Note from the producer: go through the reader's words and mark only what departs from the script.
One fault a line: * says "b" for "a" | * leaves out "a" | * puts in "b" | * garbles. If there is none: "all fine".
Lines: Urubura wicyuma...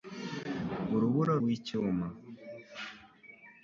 all fine